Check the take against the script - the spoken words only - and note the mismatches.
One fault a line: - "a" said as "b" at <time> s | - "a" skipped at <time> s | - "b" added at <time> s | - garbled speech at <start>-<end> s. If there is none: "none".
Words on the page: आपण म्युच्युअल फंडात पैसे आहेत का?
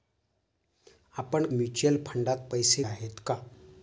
none